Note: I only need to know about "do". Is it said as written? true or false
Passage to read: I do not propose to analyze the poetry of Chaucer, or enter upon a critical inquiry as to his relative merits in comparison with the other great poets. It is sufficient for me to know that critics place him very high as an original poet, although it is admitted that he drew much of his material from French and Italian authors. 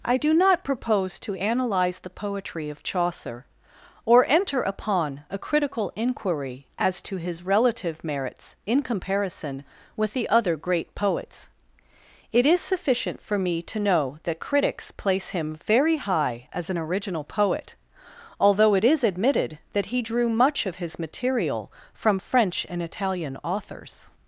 true